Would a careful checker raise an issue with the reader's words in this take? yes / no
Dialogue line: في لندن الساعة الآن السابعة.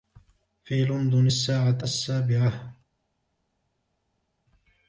yes